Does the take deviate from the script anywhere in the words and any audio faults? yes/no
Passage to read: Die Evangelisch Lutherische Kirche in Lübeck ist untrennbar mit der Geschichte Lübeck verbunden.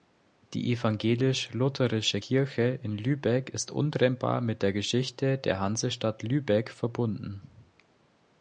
yes